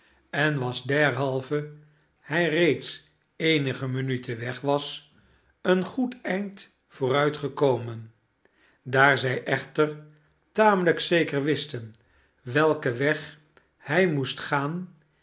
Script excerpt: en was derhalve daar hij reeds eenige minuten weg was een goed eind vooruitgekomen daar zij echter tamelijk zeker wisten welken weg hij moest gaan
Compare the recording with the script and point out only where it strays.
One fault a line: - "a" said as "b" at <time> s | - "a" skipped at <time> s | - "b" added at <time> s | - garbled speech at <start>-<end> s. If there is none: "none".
- "daar" skipped at 1.7 s